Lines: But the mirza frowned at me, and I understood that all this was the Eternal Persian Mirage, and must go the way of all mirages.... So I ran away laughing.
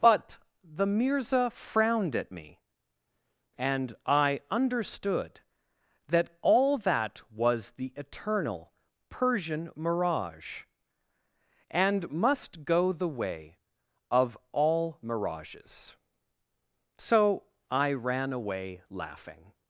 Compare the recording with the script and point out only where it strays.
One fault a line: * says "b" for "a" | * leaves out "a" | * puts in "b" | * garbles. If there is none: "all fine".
* says "that" for "this"